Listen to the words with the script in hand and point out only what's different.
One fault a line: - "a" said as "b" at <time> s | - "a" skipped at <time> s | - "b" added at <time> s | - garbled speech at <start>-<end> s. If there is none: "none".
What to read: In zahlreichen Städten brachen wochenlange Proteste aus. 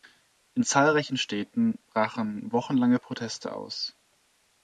none